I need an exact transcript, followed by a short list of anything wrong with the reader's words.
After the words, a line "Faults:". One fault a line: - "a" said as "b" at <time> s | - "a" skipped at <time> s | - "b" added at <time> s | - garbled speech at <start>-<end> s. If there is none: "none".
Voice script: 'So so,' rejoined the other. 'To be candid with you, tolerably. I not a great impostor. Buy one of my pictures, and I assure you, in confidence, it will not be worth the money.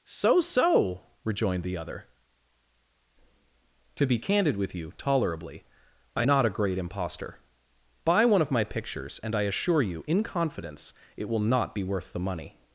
'So so,' rejoined the other. 'To be candid with you, tolerably. I not a great impostor. Buy one of my pictures, and I assure you, in confidence, it will not be worth the money.
Faults:
none